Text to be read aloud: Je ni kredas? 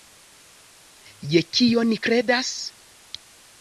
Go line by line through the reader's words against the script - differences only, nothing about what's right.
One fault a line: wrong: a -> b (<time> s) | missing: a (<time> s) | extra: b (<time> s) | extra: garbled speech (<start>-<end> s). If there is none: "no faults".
extra: kio (1.6 s)